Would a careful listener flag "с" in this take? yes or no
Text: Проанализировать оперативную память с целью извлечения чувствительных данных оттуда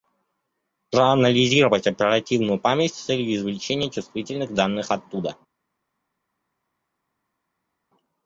no